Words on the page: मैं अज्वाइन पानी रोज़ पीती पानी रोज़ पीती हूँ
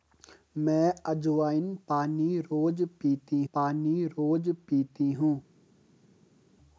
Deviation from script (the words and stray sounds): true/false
false